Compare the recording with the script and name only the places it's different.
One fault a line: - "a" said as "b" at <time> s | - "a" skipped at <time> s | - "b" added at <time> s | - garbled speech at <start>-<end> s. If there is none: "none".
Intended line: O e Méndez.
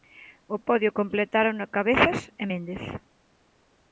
- "podio completárono Cabezas" added at 0.7 s